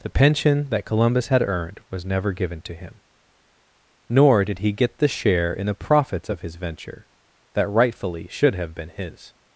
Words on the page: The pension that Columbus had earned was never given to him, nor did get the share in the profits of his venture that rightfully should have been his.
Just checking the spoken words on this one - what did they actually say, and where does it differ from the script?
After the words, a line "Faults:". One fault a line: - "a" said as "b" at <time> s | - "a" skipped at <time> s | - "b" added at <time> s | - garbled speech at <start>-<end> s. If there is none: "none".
The pension that Columbus had earned was never given to him, nor did he get the share in the profits of his venture that rightfully should have been his.
Faults:
- "he" added at 4.6 s